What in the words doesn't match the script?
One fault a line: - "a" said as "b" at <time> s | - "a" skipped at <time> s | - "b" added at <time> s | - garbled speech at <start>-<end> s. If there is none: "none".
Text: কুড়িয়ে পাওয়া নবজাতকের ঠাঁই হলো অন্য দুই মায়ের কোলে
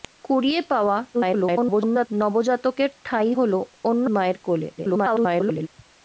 - garbled speech at 1.1-2.1 s
- "দুই" skipped at 4.1 s
- garbled speech at 4.8-5.7 s